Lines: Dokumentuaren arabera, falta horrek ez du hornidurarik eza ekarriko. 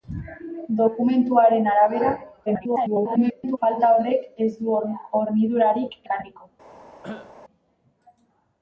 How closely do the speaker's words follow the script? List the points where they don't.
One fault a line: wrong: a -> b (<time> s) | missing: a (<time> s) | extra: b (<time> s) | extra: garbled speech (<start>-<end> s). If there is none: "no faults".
extra: garbled speech (2.5-3.6 s)
missing: eza (6.0 s)